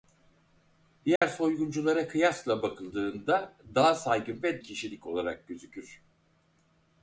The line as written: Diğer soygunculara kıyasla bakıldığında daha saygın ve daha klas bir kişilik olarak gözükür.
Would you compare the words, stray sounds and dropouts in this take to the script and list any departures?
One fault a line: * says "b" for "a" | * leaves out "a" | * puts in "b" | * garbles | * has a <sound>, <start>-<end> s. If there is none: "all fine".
* has a dropout, 1.2-1.2 s
* leaves out "daha klas bir"